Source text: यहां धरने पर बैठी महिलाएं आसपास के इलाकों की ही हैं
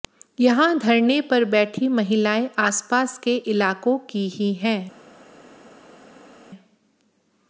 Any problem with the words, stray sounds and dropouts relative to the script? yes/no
no